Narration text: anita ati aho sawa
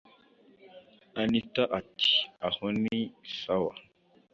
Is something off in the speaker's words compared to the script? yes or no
yes